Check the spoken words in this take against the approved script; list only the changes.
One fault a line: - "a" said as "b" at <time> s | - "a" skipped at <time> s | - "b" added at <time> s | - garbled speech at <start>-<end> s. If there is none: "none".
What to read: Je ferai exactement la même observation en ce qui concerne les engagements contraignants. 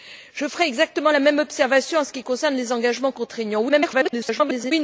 - garbled speech at 3.7-4.7 s